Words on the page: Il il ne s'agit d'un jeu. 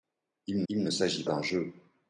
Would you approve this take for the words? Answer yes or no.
yes